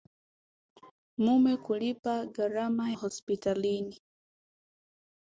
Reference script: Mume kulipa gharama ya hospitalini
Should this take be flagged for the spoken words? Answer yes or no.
yes